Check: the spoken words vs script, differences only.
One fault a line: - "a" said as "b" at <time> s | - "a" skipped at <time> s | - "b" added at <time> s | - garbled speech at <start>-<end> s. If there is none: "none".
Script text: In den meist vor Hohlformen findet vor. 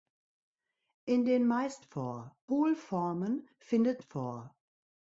none